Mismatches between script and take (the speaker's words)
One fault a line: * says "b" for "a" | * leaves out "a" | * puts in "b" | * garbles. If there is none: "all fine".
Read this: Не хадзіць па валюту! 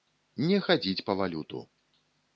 all fine